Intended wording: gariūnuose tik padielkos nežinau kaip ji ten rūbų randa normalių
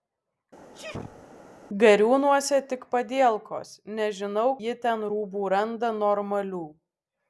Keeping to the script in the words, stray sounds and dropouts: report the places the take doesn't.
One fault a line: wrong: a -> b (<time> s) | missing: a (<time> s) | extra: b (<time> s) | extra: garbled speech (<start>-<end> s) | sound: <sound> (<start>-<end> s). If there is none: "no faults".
sound: sneeze (0.7-1.3 s)
missing: kaip (4.5 s)